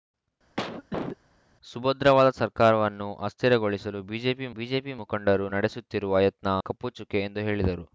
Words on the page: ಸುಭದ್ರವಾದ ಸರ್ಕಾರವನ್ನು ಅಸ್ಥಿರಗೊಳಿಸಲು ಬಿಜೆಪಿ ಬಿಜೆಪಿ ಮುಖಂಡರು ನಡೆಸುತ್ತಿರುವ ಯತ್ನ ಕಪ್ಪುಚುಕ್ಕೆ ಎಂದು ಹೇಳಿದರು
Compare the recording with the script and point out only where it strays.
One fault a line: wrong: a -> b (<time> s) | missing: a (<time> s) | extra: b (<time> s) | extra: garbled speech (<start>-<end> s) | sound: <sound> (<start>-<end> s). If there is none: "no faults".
sound: cough (0.6-1.2 s)